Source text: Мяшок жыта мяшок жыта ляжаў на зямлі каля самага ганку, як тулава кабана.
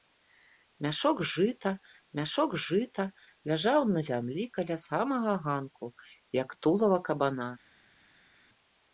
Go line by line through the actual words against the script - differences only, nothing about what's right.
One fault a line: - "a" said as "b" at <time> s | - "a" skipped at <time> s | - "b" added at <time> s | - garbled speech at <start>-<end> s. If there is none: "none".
none